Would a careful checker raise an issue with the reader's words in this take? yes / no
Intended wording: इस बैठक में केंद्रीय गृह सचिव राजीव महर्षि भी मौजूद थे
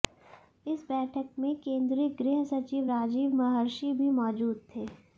no